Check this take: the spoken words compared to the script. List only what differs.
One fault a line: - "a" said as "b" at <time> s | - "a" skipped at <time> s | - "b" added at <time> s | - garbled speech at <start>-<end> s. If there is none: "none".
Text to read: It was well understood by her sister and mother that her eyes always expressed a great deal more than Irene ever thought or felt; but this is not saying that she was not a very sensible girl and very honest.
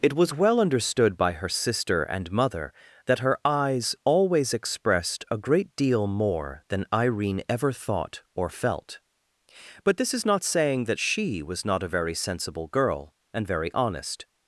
none